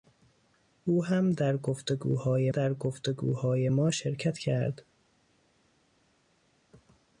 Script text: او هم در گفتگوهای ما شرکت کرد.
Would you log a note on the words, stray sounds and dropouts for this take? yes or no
yes